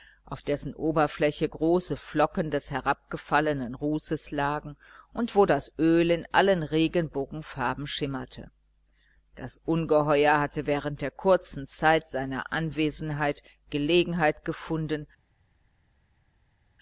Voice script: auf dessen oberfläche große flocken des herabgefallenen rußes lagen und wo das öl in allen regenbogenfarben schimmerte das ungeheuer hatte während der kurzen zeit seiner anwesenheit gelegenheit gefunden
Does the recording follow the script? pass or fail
pass